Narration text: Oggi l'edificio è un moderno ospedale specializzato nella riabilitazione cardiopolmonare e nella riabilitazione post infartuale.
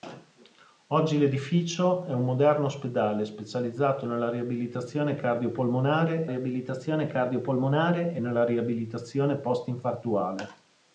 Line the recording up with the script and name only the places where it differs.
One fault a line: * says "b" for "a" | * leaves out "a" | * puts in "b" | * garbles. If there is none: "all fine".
* puts in "riabilitazione cardiopolmonare"